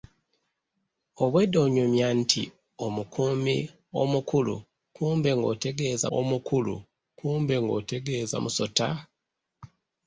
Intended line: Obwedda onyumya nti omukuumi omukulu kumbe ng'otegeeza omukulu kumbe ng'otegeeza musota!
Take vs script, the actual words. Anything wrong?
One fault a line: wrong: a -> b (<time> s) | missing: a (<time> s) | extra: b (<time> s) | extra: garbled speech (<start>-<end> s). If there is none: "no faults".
no faults